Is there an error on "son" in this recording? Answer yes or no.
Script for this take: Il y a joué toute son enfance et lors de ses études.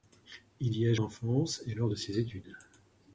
yes